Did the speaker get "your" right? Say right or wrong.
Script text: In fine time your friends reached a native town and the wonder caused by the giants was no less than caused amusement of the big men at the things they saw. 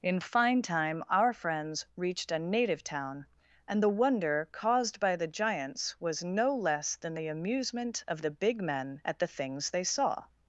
wrong